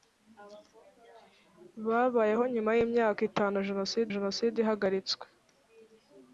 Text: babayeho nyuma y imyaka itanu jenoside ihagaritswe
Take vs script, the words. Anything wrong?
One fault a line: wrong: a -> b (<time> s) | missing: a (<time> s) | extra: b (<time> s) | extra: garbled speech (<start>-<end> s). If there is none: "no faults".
extra: jenoside (4.1 s)